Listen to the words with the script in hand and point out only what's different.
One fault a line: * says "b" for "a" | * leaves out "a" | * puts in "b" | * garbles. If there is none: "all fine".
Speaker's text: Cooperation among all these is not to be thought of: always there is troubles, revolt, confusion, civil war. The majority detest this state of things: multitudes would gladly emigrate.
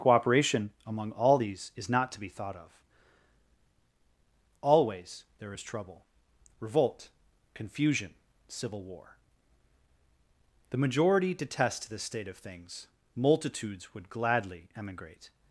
* says "trouble" for "troubles"